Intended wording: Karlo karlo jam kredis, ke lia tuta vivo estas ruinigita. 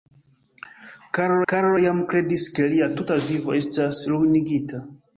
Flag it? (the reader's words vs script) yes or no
no